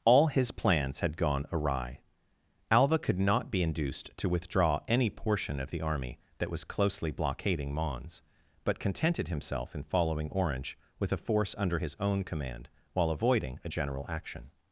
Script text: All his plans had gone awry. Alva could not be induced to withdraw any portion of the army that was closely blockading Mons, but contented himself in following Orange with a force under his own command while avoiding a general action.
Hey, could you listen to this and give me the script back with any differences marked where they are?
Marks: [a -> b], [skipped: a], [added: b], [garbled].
All his plans had gone awry. Alva could not be induced to withdraw any portion of the army that was closely blockading Mons, but contented himself in following Orange with a force under his own command while avoiding a general action.